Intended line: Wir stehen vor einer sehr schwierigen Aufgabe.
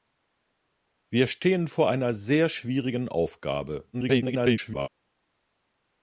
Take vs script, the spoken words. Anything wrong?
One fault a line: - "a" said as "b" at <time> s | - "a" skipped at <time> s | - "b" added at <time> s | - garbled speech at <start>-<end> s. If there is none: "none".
- garbled speech at 3.9-4.9 s